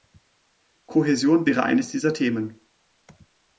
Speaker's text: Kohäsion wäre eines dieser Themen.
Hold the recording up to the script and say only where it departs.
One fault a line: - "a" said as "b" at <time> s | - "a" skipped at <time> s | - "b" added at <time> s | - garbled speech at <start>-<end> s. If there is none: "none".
none